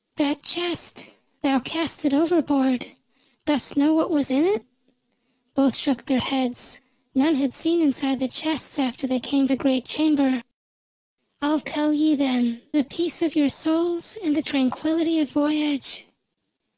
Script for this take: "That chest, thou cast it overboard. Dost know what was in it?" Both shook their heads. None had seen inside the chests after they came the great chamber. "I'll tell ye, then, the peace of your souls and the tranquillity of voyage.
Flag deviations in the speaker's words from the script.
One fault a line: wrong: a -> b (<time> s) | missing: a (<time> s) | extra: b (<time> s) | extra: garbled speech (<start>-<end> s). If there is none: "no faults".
no faults